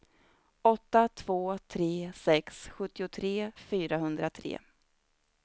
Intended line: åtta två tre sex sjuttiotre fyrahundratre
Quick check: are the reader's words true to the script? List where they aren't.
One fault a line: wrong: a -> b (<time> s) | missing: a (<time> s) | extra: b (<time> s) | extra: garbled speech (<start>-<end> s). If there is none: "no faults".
no faults